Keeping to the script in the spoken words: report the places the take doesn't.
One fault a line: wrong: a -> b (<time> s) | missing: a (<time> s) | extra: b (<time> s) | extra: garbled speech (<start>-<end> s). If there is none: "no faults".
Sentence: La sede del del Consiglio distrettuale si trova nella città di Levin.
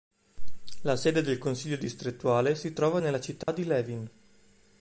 missing: del (1.4 s)